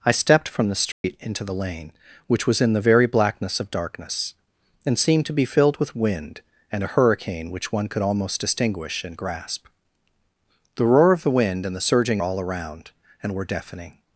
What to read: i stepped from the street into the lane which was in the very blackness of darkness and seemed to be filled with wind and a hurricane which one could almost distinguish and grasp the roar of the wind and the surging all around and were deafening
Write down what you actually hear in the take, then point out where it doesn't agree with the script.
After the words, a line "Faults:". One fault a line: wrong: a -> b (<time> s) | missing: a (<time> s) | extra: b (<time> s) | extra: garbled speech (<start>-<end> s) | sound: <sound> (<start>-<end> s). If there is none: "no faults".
i stepped from the street into the lane which was in the very blackness of darkness and seemed to be filled with wind and a hurricane which one could almost distinguish and grasp the roar of the wind and the surging all around and were deafening
Faults:
sound: dropout (0.9-1.0 s)